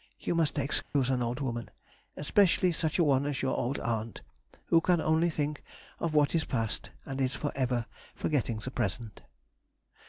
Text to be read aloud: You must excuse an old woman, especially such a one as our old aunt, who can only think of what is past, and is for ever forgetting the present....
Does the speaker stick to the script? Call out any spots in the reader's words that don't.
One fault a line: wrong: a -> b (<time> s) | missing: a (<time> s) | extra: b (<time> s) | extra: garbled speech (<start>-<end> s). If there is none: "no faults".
wrong: our -> your (3.4 s)